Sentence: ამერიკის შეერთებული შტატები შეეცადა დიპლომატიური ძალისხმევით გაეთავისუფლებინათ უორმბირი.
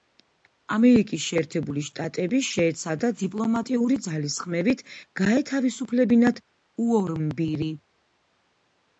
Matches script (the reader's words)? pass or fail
pass